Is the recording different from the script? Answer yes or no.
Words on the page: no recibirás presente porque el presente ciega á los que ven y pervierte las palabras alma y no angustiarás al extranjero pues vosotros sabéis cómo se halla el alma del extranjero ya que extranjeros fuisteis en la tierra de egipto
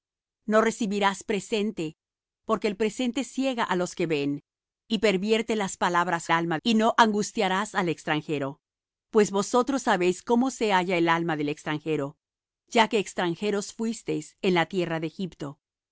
no